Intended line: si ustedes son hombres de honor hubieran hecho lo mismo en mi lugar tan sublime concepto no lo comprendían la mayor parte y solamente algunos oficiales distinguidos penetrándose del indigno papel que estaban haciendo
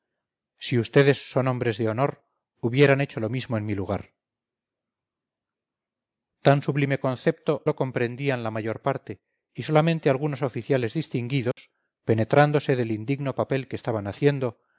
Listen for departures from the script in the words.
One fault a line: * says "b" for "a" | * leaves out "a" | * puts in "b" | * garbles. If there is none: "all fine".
* leaves out "no"